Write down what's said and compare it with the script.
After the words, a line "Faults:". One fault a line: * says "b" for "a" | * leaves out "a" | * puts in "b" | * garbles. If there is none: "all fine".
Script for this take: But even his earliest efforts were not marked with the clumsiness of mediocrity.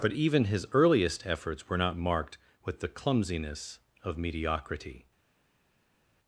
But even his earliest efforts were not marked with the clumsiness of mediocrity.
Faults:
all fine